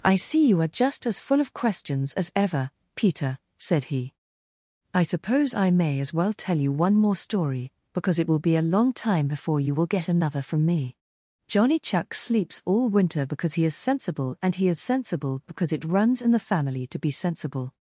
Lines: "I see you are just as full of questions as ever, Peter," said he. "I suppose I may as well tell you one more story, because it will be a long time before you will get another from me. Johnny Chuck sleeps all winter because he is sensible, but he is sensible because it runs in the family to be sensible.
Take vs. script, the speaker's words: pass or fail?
fail